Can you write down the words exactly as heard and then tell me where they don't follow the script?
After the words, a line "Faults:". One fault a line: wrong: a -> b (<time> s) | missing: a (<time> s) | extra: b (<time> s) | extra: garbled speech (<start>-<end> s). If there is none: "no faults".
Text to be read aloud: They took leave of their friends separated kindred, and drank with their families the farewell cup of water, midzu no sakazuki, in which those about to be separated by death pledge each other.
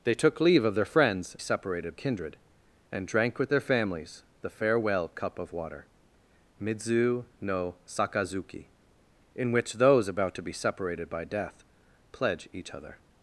They took leave of their friends separated kindred, and drank with their families the farewell cup of water, midzu no sakazuki, in which those about to be separated by death pledge each other.
Faults:
no faults